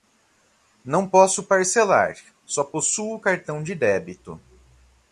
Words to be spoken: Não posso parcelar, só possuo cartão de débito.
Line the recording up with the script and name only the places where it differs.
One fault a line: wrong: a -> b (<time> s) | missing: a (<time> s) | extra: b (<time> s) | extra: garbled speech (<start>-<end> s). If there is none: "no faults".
no faults